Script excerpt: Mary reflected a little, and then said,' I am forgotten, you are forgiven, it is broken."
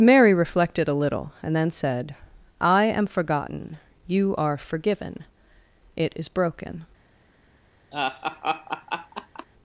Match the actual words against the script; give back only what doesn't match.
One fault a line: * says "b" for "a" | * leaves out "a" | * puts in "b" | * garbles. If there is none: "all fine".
all fine